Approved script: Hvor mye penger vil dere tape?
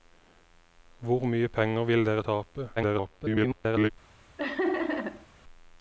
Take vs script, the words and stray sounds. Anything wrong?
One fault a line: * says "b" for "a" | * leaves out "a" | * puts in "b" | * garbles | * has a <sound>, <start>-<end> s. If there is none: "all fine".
* garbles
* has a laugh, 4.4-5.3 s